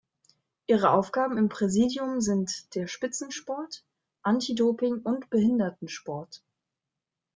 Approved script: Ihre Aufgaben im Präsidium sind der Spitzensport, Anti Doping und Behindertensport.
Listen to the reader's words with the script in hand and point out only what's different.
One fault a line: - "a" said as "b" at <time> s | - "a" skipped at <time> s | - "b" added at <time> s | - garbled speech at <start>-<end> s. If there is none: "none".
none